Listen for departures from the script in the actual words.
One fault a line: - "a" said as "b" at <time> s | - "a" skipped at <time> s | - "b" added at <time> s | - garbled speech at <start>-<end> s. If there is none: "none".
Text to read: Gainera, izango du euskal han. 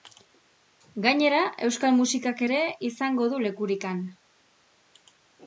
- "euskal musikak ere" added at 1.7 s
- "euskal" said as "lekurik" at 3.5 s